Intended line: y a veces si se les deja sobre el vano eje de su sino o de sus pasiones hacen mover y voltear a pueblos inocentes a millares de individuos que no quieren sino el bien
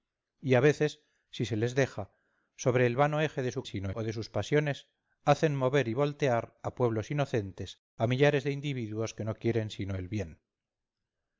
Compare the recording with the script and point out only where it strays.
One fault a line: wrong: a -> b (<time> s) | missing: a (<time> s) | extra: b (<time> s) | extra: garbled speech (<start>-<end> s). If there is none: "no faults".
no faults